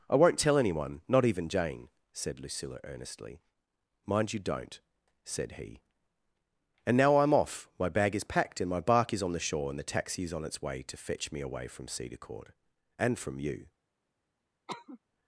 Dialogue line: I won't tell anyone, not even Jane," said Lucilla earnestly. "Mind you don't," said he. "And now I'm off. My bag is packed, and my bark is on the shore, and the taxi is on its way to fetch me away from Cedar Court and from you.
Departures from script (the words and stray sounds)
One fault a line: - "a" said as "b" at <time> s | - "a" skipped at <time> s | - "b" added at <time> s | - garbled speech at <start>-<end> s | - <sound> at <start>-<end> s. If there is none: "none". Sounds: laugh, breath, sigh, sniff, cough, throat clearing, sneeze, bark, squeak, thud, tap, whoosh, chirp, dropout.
- cough at 14.7-15.0 s